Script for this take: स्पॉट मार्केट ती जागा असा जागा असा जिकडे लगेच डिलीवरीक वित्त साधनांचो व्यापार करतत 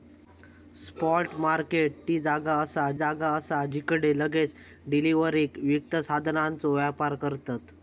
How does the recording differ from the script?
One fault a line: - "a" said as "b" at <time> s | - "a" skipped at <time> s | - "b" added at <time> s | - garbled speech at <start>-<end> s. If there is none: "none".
none